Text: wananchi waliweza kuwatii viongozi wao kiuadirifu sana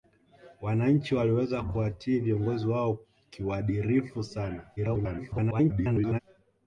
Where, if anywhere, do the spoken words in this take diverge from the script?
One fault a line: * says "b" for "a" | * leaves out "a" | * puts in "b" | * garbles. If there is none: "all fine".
* garbles